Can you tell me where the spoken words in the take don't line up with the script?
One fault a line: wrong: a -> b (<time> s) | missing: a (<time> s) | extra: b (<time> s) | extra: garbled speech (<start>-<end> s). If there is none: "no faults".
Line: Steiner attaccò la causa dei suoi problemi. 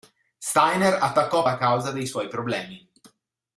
no faults